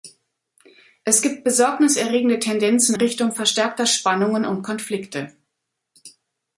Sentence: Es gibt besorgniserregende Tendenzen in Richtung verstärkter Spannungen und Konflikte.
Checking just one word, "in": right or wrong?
wrong